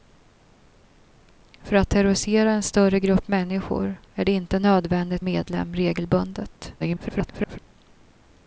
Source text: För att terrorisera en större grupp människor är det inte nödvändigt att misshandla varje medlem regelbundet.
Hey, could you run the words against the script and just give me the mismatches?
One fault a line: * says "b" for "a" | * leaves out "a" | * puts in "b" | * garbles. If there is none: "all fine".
* leaves out "att misshandla varje"
* garbles